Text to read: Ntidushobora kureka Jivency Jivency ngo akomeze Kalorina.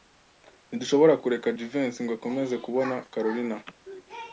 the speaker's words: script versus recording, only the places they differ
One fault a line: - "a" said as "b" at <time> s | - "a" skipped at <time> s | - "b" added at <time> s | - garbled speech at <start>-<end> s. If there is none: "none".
- "Jivency" skipped at 2.0 s
- "kubona" added at 2.7 s